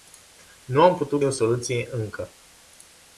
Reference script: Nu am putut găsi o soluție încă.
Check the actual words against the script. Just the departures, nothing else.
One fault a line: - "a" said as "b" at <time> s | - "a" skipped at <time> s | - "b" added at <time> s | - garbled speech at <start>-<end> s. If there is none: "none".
- "găsi" skipped at 1.2 s